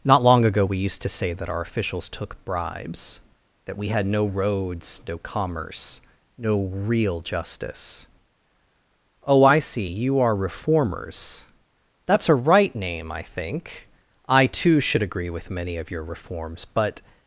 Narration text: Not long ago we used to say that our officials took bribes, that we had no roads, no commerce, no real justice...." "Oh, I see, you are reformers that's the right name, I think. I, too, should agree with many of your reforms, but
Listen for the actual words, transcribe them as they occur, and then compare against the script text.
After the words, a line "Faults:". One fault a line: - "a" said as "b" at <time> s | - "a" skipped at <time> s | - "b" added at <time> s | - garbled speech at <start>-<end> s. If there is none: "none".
Not long ago we used to say that our officials took bribes, that we had no roads, no commerce, no real justice...." "Oh, I see, you are reformers that's a right name, I think. I, too, should agree with many of your reforms, but
Faults:
- "the" said as "a" at 12.3 s